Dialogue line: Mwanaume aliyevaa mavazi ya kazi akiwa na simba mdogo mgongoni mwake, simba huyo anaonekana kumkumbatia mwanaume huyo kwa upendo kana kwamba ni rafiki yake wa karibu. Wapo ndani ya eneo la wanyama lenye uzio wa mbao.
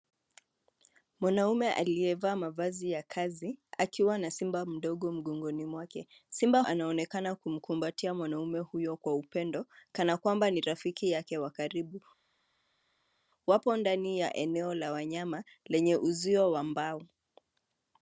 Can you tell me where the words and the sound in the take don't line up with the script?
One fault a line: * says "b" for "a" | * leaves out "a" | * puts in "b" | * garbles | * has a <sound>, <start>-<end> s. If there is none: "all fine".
* leaves out "huyo"